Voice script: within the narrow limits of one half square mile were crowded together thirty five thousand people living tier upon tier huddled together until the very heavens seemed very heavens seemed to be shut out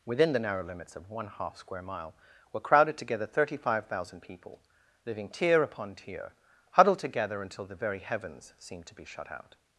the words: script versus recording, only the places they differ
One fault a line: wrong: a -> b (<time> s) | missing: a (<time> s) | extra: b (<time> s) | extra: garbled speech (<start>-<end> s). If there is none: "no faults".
missing: very heavens seemed (8.9 s)